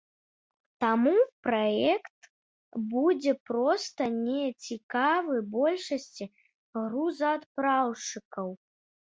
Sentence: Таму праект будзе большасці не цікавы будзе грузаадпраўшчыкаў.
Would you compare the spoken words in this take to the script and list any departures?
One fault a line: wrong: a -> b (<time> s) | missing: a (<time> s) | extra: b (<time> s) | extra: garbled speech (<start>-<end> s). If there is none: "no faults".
wrong: большасці -> проста (3.5 s)
wrong: будзе -> большасці (5.6 s)